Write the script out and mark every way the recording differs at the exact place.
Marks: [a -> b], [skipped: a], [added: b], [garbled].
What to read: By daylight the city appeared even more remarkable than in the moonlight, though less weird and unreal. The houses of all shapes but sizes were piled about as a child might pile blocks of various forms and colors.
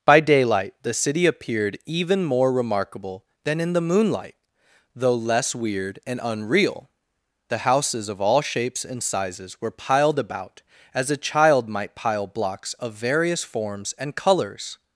By daylight the city appeared even more remarkable than in the moonlight, though less weird and unreal. The houses of all shapes [but -> and] sizes were piled about as a child might pile blocks of various forms and colors.